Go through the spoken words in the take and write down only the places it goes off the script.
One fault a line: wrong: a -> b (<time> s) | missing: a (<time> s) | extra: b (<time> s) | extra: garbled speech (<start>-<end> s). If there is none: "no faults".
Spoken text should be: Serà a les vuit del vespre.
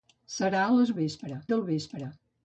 wrong: vuit -> vespre (1.0 s)